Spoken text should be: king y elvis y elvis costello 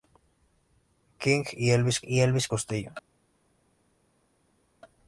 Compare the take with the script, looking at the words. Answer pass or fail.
pass